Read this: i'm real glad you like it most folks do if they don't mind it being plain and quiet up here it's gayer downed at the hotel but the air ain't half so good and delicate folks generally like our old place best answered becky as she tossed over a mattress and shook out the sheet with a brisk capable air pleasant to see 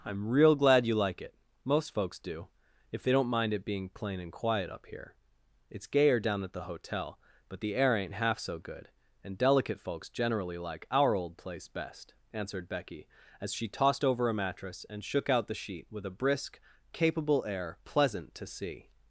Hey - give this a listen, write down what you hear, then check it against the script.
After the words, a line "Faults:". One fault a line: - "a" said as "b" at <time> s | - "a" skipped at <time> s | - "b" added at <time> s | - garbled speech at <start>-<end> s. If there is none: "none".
i'm real glad you like it most folks do if they don't mind it being plain and quiet up here it's gayer down at the hotel but the air ain't half so good and delicate folks generally like our old place best answered becky as she tossed over a mattress and shook out the sheet with a brisk capable air pleasant to see
Faults:
- "downed" said as "down" at 6.2 s